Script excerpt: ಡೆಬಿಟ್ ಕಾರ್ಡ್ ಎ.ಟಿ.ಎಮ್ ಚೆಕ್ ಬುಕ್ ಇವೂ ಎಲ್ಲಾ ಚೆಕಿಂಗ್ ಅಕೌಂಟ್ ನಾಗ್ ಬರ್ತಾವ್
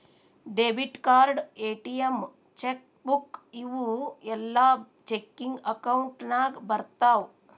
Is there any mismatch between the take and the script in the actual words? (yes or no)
no